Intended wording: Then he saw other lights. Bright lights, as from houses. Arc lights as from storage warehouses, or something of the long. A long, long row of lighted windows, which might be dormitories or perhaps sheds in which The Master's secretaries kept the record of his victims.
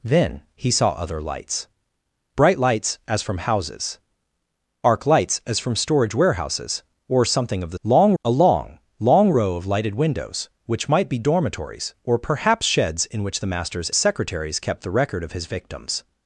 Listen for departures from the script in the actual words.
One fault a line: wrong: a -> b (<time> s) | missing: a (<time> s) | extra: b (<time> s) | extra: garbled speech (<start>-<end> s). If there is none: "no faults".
no faults